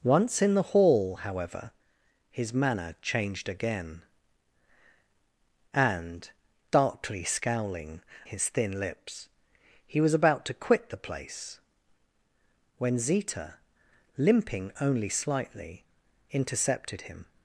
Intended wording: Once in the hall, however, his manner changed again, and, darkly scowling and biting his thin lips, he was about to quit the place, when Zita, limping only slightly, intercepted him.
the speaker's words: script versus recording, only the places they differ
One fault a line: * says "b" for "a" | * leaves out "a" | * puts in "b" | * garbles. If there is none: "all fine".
* leaves out "and biting"